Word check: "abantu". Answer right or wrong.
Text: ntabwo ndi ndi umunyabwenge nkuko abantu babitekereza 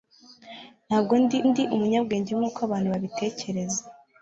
right